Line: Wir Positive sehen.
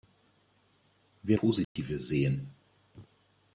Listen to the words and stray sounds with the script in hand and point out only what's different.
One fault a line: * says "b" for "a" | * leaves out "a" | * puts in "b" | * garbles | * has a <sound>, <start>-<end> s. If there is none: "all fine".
* has a dropout, 1.6-1.8 s